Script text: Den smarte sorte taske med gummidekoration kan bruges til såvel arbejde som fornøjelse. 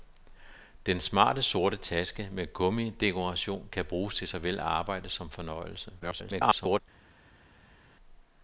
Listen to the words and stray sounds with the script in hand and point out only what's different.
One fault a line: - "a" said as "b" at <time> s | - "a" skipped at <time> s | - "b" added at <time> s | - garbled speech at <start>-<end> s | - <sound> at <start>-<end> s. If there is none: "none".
- garbled speech at 6.0-6.8 s